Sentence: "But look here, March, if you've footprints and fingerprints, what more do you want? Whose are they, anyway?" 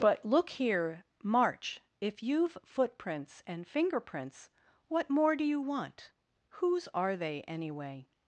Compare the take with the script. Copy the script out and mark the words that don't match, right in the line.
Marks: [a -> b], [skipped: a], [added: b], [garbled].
"But look here, March, if you've footprints and fingerprints, what more do you want? Whose are they, anyway?"